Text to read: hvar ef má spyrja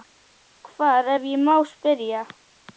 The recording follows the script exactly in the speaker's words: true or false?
false